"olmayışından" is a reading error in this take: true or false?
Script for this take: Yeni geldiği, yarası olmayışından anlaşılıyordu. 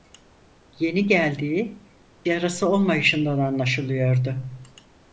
false